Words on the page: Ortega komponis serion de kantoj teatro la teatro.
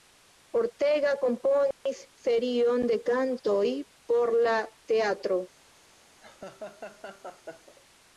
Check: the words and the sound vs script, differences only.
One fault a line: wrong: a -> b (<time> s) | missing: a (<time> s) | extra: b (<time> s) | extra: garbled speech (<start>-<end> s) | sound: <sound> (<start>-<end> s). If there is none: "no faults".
sound: dropout (1.7-1.9 s)
wrong: teatro -> por (4.1 s)
sound: laugh (6.2-7.7 s)